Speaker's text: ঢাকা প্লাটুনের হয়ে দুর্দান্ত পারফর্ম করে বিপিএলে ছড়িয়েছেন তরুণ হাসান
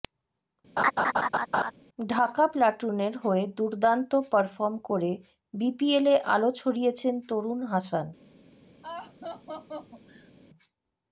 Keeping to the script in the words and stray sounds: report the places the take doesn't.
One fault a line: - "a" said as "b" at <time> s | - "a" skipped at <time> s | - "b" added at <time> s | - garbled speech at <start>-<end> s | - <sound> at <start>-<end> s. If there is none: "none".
- laugh at 0.8-1.7 s
- "আলো" added at 6.3 s
- laugh at 8.8-10.3 s